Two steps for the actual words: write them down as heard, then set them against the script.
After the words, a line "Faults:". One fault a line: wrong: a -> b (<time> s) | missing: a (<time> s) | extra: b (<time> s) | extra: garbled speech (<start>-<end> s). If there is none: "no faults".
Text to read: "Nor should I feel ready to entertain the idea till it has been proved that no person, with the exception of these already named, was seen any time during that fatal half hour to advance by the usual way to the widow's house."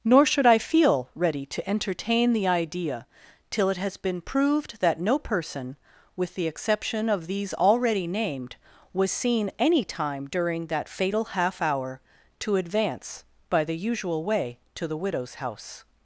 "Nor should I feel ready to entertain the idea till it has been proved that no person, with the exception of these already named, was seen any time during that fatal half hour to advance by the usual way to the widow's house."
Faults:
no faults